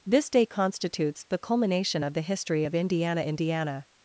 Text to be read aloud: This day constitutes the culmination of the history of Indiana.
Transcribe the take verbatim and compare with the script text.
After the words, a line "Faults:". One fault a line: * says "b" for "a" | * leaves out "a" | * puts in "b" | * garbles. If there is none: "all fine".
This day constitutes the culmination of the history of Indiana Indiana.
Faults:
* puts in "Indiana"